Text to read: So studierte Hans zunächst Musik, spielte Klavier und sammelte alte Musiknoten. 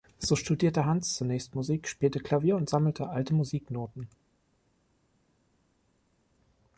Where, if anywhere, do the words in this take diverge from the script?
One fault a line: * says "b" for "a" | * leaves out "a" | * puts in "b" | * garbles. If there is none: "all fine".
all fine